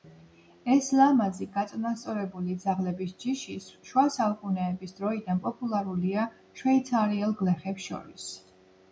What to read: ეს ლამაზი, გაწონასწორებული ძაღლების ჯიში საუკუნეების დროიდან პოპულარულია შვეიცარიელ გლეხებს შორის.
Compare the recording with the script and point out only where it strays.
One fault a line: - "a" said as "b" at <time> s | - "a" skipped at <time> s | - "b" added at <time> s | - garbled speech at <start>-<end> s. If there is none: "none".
- "შუა" added at 3.9 s